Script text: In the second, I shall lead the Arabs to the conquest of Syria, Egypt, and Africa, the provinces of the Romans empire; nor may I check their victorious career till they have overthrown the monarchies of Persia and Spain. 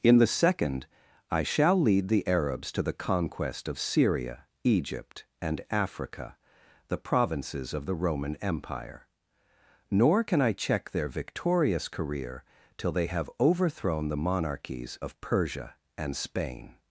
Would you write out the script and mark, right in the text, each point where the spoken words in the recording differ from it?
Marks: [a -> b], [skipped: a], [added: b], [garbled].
In the second, I shall lead the Arabs to the conquest of Syria, Egypt, and Africa, the provinces of the [Romans -> Roman] empire; nor [may -> can] I check their victorious career till they have overthrown the monarchies of Persia and Spain.